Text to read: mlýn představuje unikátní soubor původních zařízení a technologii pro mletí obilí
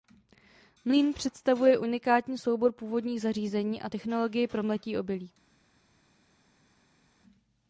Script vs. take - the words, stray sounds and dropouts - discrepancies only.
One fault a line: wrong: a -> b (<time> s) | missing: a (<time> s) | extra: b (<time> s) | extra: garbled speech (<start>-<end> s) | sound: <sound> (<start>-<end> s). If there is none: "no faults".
no faults